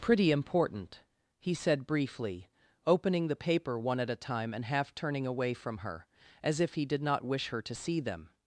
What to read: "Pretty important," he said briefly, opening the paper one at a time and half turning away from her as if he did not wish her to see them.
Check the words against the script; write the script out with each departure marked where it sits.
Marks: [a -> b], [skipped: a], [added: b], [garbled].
"Pretty important," he said briefly, opening the paper one at a time and half turning away from her as if he did not wish her to see them.